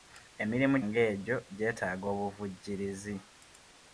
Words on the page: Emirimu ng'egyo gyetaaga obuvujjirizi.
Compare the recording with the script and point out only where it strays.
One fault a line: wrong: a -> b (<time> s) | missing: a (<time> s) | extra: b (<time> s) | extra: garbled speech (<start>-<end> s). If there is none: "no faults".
no faults